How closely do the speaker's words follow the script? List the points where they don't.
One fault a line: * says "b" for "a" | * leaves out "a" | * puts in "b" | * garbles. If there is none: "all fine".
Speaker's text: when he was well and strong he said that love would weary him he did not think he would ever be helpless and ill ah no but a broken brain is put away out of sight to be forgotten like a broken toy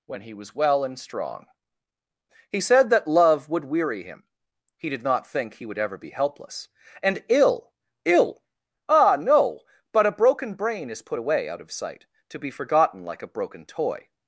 * puts in "ill"